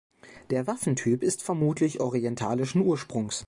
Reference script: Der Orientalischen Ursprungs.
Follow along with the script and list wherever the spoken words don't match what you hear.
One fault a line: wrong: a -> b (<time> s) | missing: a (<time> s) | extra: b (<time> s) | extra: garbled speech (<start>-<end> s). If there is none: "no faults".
extra: Waffentyp ist vermutlich (0.7 s)